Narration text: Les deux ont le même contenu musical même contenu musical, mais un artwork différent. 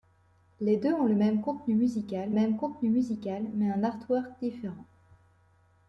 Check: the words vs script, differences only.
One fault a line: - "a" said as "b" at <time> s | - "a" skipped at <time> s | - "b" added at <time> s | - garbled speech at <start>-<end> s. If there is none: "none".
none